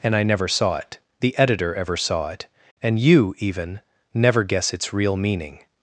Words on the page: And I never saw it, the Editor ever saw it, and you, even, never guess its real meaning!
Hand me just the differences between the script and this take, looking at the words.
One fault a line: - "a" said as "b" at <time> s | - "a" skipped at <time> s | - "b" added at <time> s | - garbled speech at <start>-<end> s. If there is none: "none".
none